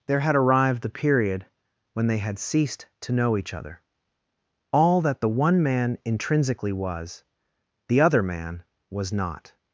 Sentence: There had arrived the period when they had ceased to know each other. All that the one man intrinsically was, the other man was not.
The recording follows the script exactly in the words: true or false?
true